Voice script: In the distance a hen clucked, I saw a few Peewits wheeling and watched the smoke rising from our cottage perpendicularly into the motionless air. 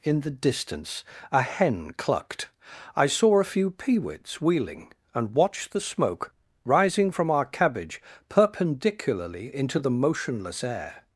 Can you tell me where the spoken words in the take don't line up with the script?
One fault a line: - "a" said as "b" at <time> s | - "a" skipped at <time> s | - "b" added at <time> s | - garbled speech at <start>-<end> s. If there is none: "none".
- "cottage" said as "cabbage" at 7.4 s